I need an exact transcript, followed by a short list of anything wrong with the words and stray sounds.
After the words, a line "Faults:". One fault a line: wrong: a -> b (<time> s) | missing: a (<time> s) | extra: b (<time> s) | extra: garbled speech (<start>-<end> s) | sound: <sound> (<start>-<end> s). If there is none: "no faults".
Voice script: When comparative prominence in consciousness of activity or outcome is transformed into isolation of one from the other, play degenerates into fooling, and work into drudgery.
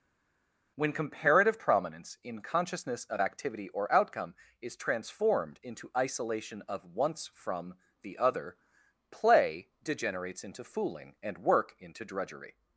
When comparative prominence in consciousness of activity or outcome is transformed into isolation of once from the other, play degenerates into fooling, and work into drudgery.
Faults:
wrong: one -> once (6.9 s)